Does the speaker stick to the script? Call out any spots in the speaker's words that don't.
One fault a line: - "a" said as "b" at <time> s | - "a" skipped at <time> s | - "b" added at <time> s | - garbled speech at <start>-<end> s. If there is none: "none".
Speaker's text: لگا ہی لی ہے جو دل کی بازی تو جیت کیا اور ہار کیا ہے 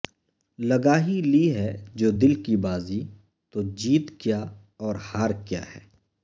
none